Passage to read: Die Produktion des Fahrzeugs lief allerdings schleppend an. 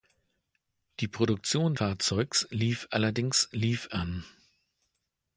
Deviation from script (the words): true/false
true